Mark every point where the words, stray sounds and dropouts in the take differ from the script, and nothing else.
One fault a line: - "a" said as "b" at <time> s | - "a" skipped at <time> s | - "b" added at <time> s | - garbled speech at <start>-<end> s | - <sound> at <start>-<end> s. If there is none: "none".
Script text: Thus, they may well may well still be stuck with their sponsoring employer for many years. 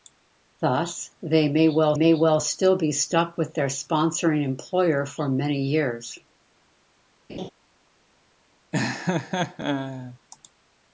- laugh at 7.3-7.5 s
- laugh at 8.7-10.2 s